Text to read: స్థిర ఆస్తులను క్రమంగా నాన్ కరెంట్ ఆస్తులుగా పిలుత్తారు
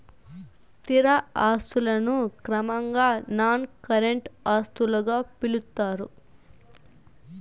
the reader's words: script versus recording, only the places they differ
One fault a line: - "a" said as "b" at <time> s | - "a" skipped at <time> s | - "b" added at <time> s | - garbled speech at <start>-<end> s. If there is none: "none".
none